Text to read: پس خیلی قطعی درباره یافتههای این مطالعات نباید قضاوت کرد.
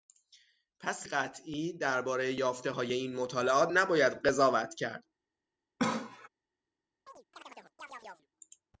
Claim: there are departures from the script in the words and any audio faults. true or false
true